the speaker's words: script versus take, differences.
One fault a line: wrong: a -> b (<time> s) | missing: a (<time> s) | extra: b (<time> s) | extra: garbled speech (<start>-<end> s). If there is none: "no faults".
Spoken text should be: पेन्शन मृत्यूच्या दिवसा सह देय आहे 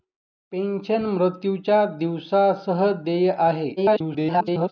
extra: garbled speech (3.8-4.7 s)